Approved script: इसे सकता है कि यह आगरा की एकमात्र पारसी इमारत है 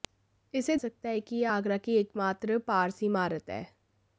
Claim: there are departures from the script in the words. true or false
false